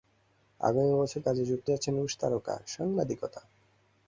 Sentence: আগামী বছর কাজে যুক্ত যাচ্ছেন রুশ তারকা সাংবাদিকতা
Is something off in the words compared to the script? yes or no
no